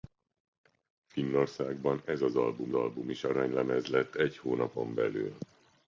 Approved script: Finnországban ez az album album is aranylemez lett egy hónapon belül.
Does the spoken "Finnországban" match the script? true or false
true